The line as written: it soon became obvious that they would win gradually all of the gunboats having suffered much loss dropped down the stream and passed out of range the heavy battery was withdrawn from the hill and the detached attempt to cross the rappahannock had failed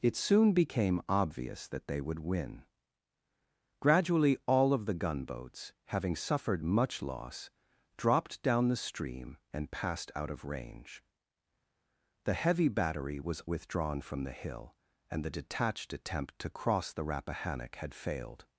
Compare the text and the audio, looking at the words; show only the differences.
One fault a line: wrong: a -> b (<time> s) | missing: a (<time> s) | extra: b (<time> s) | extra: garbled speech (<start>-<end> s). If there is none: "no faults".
no faults